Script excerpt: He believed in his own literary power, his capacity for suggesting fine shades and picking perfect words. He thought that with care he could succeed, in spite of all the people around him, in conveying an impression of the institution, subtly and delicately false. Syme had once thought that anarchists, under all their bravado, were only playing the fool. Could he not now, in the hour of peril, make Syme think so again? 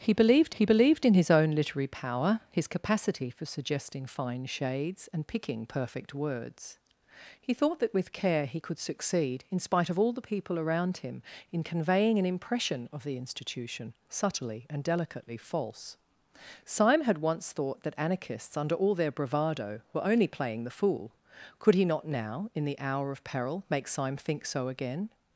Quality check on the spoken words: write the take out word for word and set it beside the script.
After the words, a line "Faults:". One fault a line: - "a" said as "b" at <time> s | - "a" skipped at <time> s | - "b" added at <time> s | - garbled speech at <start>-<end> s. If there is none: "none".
He believed he believed in his own literary power, his capacity for suggesting fine shades and picking perfect words. He thought that with care he could succeed, in spite of all the people around him, in conveying an impression of the institution, subtly and delicately false. Syme had once thought that anarchists, under all their bravado, were only playing the fool. Could he not now, in the hour of peril, make Syme think so again?
Faults:
- "he believed" added at 0.5 s